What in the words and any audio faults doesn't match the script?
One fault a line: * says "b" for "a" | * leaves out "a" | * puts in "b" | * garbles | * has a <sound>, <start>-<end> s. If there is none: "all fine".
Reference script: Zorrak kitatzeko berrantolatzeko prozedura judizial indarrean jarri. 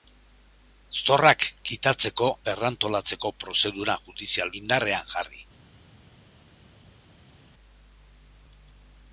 all fine